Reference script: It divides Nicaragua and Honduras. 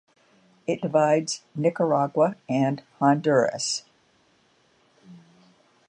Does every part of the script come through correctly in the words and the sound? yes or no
yes